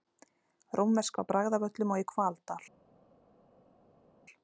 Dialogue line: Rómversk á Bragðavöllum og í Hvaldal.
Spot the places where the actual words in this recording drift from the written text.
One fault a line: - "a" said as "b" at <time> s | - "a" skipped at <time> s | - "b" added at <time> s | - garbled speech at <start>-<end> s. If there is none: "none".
none